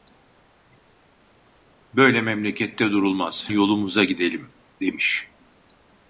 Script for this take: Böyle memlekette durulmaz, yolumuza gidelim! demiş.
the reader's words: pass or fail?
pass